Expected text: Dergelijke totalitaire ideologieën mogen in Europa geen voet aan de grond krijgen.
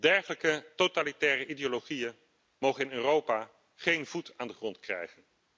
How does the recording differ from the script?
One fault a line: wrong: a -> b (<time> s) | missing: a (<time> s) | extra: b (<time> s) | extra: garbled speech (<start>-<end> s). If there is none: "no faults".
no faults